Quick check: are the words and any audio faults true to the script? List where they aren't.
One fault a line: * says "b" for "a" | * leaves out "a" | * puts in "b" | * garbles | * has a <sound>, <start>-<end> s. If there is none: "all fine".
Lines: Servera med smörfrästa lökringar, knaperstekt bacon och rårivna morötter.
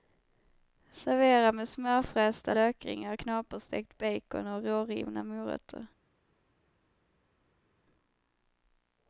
all fine